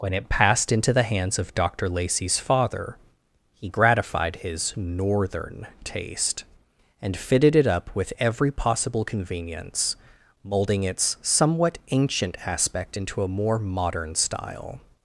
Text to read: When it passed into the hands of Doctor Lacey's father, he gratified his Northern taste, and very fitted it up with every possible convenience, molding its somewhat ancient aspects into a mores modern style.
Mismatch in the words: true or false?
true